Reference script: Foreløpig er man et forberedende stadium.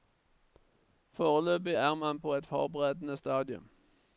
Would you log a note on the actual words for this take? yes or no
yes